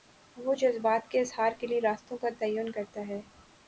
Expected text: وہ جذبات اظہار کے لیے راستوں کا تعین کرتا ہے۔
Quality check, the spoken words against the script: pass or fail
fail